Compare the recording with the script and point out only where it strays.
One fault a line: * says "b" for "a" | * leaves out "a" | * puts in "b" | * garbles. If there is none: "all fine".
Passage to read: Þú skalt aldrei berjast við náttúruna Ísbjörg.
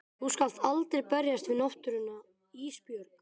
all fine